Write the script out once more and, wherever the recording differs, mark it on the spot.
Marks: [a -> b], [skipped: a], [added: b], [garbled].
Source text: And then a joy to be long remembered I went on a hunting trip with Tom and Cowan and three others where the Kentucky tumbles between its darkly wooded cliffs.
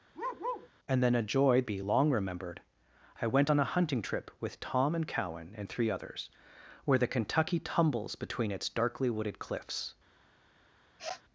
And then a joy [skipped: to] be long remembered I went on a hunting trip with Tom and Cowan and three others where the Kentucky tumbles between its darkly wooded cliffs.